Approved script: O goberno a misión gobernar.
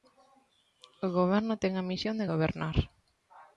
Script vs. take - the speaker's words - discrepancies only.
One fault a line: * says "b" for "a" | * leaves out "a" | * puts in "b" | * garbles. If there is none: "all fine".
* puts in "ten"
* puts in "de"